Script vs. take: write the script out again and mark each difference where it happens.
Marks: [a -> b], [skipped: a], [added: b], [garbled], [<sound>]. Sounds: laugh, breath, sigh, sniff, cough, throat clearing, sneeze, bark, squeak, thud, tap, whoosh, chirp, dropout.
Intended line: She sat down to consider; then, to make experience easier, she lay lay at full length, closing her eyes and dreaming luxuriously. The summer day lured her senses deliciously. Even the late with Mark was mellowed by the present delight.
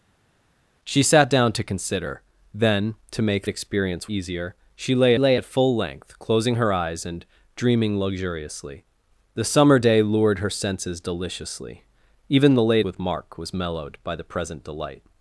She sat down to consider; then, to make experience easier, she lay lay at full length, closing her eyes and dreaming luxuriously. The summer day lured her senses deliciously. Even the late with Mark was mellowed by the present delight.